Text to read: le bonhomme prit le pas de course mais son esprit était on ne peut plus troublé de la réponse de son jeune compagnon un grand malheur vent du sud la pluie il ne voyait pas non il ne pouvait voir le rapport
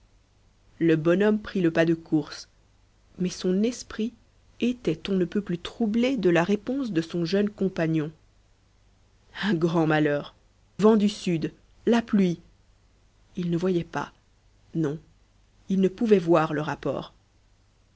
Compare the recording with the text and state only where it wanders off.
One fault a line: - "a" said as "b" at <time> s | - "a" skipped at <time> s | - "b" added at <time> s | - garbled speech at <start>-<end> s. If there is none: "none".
none